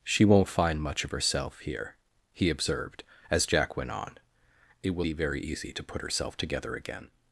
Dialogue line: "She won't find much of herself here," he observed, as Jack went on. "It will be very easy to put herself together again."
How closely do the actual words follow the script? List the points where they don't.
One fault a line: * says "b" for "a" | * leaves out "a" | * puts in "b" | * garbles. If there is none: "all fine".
all fine